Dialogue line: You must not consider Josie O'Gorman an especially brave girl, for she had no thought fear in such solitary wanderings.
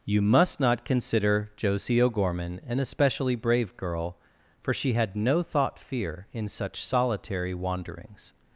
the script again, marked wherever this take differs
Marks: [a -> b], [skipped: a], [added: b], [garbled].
You must not consider Josie O'Gorman an especially brave girl, for she had no thought fear in such solitary wanderings.